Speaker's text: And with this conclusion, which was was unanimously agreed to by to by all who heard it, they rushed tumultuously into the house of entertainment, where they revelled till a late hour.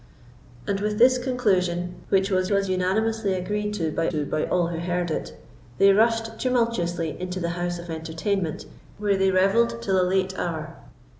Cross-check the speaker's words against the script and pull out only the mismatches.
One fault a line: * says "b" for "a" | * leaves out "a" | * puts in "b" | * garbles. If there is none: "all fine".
all fine